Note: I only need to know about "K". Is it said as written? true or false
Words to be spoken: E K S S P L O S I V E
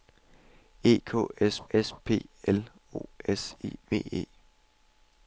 true